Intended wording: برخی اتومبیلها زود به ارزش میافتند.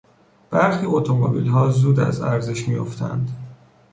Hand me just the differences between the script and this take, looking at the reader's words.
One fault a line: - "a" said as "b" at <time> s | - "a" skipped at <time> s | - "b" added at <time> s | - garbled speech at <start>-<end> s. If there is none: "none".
- "به" said as "از" at 2.0 s